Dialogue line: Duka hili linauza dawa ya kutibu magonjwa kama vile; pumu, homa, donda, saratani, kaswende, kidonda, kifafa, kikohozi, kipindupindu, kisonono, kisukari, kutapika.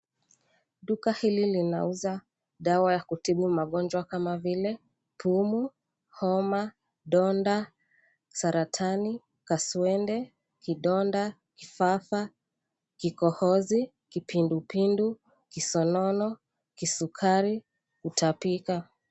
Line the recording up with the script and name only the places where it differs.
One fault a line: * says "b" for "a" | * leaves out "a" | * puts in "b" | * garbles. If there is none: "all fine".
all fine